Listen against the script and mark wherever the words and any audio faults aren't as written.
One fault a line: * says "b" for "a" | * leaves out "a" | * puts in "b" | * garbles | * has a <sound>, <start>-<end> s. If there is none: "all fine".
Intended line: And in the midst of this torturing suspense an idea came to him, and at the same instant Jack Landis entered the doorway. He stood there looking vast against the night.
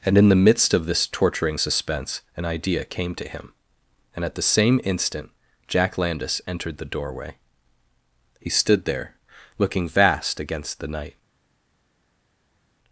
all fine